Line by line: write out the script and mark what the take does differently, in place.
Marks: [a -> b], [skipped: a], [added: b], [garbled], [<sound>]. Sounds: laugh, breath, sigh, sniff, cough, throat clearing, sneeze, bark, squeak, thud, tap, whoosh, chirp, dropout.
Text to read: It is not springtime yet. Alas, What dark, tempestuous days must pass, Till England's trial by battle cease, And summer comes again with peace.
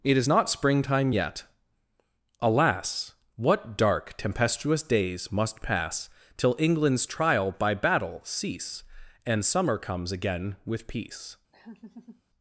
It is not springtime yet. Alas, What dark, tempestuous days must pass, Till England's trial by battle cease, And summer comes again with peace. [laugh]